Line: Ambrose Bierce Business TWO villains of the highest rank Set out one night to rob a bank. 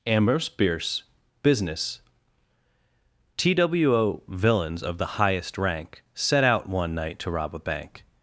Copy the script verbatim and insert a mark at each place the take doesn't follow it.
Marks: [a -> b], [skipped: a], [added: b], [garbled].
Ambrose Bierce Business TWO villains of the highest rank Set out one night to rob a bank.